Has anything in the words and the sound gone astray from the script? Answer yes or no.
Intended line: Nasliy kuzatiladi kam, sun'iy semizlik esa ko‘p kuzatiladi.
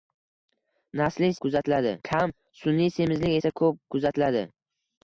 no